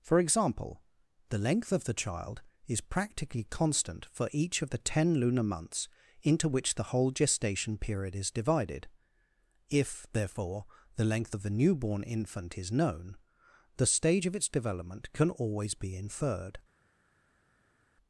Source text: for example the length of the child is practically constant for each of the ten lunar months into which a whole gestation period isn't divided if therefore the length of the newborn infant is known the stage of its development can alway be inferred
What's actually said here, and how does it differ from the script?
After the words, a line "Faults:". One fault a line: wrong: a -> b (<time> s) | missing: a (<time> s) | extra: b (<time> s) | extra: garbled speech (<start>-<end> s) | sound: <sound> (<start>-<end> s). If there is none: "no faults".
for example the length of the child is practically constant for each of the ten lunar months into which the whole gestation period is divided if therefore the length of the newborn infant is known the stage of its development can always be inferred
Faults:
wrong: a -> the (6.8 s)
wrong: isn't -> is (8.2 s)
wrong: alway -> always (15.3 s)